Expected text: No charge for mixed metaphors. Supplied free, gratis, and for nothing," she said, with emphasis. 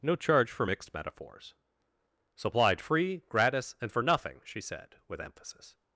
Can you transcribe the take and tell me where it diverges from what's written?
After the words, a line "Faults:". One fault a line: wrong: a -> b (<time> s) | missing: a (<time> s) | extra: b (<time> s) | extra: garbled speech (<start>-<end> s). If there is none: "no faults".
No charge for mixed metaphors. Supplied free, gratis, and for nothing," she said, with emphasis.
Faults:
no faults